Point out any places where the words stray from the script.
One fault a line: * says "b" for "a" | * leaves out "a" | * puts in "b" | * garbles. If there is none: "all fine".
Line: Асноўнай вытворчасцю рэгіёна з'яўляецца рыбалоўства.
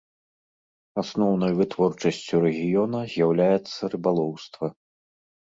all fine